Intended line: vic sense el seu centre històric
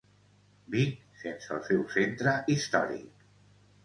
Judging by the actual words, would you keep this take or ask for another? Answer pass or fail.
pass